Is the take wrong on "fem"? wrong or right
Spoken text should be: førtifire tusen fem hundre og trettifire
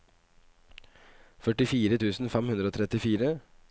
right